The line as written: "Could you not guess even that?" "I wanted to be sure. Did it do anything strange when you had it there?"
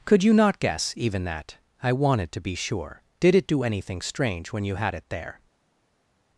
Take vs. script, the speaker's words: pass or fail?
pass